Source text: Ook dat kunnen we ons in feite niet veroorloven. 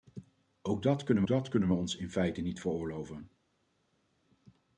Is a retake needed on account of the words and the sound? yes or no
yes